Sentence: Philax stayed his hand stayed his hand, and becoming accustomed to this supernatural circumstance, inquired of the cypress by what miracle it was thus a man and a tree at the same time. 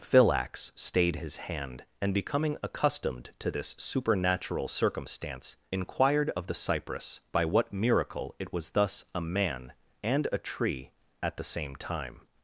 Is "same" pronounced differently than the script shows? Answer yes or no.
no